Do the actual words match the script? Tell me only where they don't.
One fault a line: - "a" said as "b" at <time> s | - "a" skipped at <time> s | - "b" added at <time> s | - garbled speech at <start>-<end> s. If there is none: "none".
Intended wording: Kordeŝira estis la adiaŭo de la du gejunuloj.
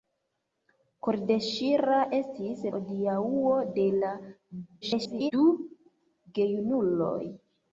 - "la" skipped at 2.6 s
- garbled speech at 4.8-5.3 s